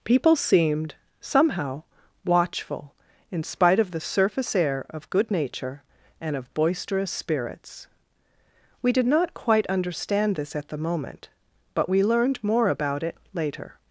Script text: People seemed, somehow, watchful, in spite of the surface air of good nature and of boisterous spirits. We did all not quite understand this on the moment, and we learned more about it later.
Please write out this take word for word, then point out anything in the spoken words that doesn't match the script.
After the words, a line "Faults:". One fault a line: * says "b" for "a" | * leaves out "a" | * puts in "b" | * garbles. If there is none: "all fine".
People seemed, somehow, watchful, in spite of the surface air of good nature and of boisterous spirits. We did not quite understand this at the moment, but we learned more about it later.
Faults:
* leaves out "all"
* says "at" for "on"
* says "but" for "and"